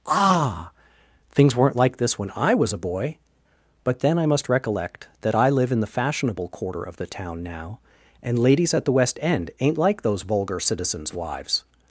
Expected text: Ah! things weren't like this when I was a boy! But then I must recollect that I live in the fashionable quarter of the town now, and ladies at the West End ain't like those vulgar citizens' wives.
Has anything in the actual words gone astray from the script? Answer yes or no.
no